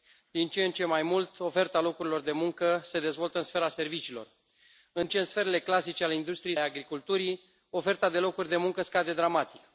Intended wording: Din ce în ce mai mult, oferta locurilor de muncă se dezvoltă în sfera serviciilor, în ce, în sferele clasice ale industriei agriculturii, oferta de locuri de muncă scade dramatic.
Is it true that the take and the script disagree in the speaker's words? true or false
false